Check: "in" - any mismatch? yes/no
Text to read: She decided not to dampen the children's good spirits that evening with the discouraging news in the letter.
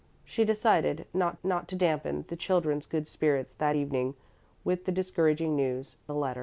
yes